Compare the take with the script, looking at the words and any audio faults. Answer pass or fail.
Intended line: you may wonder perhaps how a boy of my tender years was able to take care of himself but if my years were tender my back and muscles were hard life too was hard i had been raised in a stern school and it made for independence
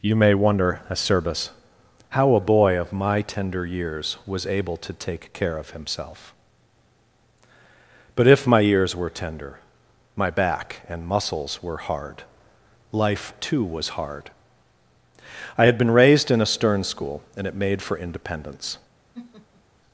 fail